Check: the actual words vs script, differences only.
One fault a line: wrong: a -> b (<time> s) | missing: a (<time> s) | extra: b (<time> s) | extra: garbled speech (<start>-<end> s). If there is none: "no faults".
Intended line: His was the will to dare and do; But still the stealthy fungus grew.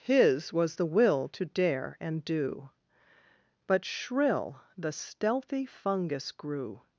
wrong: still -> shrill (3.8 s)